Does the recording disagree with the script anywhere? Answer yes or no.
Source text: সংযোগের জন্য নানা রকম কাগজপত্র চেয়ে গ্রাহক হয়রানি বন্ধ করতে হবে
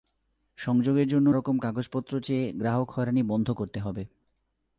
yes